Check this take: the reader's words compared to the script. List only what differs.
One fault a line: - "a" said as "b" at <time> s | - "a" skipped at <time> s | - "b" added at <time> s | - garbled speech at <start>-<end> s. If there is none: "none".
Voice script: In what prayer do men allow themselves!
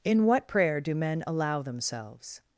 none